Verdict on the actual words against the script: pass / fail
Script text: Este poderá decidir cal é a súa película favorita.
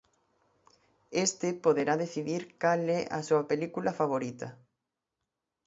pass